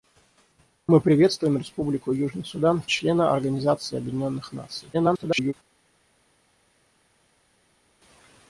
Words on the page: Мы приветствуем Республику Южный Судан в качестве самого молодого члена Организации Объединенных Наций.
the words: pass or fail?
fail